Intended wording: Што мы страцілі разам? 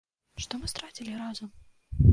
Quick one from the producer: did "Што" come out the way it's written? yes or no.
yes